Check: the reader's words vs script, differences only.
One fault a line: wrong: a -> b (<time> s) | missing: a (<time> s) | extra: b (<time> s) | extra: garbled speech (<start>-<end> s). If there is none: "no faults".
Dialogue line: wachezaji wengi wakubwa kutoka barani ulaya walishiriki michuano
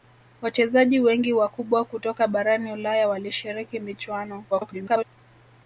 extra: garbled speech (4.5-5.0 s)